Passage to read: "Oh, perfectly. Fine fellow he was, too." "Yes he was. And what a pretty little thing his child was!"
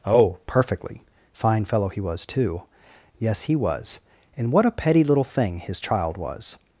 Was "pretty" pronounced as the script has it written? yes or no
no